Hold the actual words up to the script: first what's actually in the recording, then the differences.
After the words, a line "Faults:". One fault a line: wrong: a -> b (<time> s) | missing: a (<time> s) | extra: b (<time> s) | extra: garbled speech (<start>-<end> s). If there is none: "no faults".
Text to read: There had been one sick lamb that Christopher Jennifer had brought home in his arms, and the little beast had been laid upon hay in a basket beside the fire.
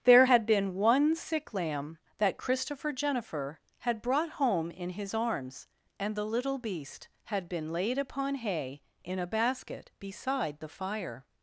There had been one sick lamb that Christopher Jennifer had brought home in his arms, and the little beast had been laid upon hay in a basket beside the fire.
Faults:
no faults